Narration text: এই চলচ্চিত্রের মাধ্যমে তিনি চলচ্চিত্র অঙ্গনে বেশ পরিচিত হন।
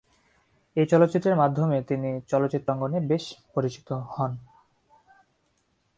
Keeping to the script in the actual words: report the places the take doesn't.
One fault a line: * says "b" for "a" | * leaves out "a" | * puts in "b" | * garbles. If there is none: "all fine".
all fine